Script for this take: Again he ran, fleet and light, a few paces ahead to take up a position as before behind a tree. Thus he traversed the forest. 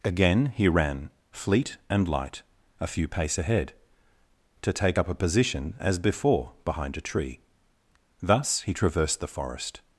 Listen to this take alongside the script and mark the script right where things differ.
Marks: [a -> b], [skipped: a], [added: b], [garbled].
Again he ran, fleet and light, a few [paces -> pace] ahead to take up a position as before behind a tree. Thus he traversed the forest.